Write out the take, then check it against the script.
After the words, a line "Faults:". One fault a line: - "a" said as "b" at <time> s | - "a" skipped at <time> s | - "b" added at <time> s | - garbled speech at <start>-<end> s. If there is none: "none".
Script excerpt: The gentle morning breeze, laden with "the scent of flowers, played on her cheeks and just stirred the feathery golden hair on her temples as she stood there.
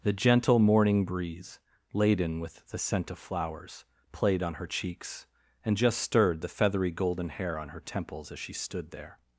The gentle morning breeze, laden with "the scent of flowers, played on her cheeks and just stirred the feathery golden hair on her temples as she stood there.
Faults:
none